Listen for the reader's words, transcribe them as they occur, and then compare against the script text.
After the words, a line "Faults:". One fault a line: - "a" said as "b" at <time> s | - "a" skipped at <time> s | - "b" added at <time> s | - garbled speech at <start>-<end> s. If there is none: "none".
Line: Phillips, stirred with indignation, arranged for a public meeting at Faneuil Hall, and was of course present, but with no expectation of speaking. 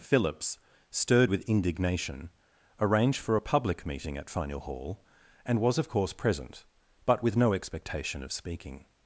Phillips, stirred with indignation, arranged for a public meeting at Faneuil Hall, and was of course present, but with no expectation of speaking.
Faults:
none